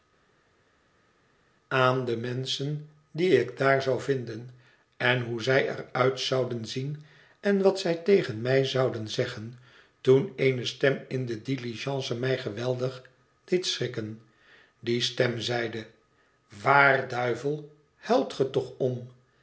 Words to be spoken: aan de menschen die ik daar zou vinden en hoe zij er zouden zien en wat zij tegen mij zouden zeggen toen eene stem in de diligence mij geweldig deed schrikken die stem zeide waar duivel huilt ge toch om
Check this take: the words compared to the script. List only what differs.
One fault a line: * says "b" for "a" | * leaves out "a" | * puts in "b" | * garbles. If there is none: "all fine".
* puts in "uit"